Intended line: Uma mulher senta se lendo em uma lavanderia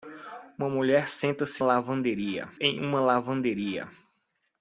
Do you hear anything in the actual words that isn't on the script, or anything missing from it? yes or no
yes